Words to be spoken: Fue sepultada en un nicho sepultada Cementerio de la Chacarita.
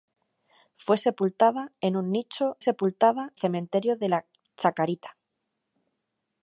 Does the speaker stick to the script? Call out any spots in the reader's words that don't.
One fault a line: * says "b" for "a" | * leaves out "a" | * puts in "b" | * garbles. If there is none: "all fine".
all fine